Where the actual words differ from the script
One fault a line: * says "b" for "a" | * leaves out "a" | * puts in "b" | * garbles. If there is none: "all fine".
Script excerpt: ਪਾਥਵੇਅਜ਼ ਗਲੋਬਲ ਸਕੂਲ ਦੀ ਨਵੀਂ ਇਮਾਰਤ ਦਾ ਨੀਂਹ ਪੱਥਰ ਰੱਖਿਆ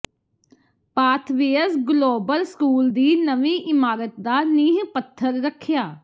all fine